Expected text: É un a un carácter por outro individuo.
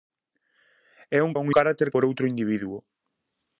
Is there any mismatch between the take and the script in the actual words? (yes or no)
no